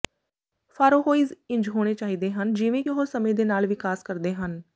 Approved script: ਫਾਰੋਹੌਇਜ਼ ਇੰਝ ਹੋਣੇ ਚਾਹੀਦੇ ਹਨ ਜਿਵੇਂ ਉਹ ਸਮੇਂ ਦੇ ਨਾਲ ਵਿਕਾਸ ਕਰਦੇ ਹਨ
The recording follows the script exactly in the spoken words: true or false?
true